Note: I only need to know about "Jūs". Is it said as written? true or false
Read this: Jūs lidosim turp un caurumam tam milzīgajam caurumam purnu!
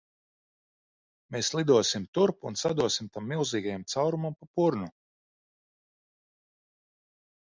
false